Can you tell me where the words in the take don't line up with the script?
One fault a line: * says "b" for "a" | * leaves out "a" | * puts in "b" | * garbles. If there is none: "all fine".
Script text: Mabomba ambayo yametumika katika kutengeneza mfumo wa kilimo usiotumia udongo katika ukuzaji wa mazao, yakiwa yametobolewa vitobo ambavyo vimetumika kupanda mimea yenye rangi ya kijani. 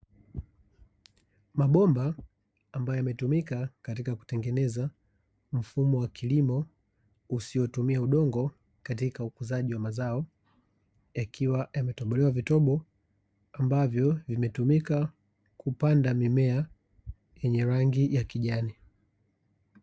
all fine